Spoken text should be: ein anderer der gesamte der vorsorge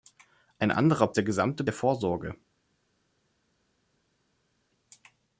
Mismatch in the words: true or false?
false